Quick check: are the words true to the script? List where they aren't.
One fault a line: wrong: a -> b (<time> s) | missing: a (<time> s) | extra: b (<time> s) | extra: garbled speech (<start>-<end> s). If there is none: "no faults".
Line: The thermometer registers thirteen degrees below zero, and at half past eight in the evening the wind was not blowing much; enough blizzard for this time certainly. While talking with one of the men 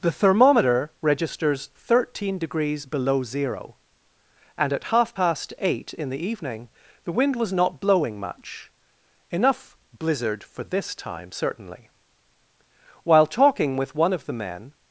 no faults